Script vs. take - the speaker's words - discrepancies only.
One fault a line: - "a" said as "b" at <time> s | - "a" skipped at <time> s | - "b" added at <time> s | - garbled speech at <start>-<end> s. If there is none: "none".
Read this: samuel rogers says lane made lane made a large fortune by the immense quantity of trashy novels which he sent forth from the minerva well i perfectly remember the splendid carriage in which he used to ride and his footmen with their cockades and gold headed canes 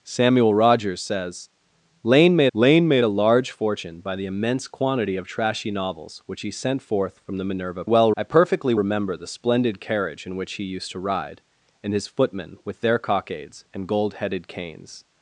none